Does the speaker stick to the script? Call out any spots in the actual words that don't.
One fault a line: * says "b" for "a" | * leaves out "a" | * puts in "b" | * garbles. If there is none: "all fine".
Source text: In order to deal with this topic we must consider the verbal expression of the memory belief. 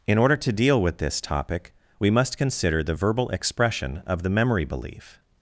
all fine